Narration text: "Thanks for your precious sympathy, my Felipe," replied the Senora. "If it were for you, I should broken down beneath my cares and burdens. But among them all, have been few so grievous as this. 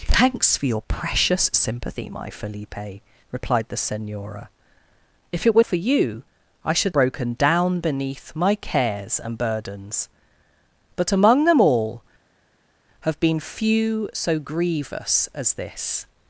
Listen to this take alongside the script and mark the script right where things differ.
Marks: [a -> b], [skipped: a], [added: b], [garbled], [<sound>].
"Thanks for your precious sympathy, my Felipe," replied the Senora. "If it were for you, I should broken down beneath my cares and burdens. But among them all, have been few so grievous as this.